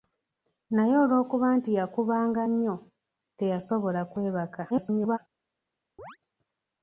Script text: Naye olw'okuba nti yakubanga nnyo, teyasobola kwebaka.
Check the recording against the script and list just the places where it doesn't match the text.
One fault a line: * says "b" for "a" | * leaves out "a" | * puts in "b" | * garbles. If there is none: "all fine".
* garbles